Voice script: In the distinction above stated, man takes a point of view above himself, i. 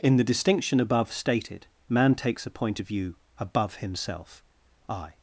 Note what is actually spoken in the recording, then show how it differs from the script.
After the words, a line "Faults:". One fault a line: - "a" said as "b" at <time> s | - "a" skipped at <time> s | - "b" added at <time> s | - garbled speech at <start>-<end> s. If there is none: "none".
In the distinction above stated, man takes a point of view above himself, i.
Faults:
none